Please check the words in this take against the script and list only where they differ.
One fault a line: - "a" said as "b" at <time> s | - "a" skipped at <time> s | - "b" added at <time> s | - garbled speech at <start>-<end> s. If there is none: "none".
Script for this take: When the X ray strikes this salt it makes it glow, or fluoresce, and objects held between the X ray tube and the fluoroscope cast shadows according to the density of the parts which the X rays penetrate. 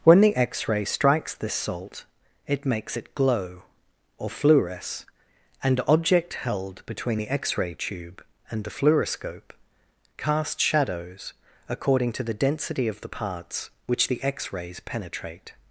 - "objects" said as "object" at 5.9 s